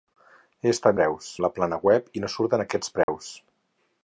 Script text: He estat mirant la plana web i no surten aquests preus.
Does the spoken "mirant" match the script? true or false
false